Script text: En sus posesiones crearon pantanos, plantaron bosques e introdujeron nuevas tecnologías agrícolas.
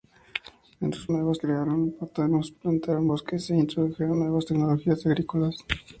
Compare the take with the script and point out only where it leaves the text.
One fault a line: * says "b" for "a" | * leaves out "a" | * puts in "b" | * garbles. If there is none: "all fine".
* says "nuevas" for "posesiones"